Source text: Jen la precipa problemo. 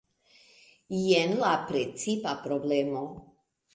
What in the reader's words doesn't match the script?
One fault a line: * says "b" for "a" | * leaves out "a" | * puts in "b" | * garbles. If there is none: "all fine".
all fine